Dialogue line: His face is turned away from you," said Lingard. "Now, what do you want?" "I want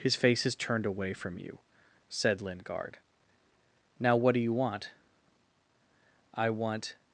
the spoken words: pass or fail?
pass